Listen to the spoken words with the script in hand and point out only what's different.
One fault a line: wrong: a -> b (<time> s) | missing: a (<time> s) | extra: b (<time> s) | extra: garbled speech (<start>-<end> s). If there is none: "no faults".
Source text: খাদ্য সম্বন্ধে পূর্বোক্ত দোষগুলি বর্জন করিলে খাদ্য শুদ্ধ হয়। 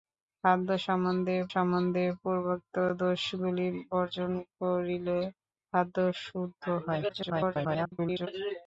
extra: সম্বন্ধে (1.5 s)
extra: garbled speech (7.1-8.3 s)